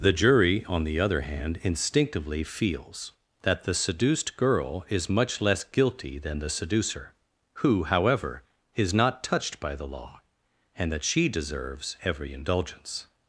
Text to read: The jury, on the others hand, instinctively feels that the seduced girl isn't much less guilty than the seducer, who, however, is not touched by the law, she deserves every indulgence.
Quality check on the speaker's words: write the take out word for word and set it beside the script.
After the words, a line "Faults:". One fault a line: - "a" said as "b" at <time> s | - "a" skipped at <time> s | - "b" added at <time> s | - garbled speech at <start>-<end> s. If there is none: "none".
The jury, on the other hand, instinctively feels that the seduced girl is much less guilty than the seducer, who, however, is not touched by the law, and that she deserves every indulgence.
Faults:
- "others" said as "other" at 1.0 s
- "isn't" said as "is" at 4.9 s
- "and that" added at 10.7 s